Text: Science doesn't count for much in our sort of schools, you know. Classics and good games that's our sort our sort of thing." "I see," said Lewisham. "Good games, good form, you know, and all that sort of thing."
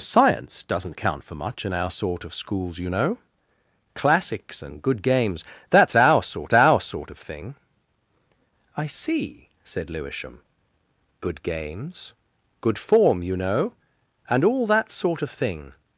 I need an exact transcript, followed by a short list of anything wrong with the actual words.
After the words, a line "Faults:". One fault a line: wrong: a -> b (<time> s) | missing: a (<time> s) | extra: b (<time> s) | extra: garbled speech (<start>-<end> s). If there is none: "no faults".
Science doesn't count for much in our sort of schools, you know. Classics and good games that's our sort our sort of thing." "I see," said Lewisham. "Good games, good form, you know, and all that sort of thing."
Faults:
no faults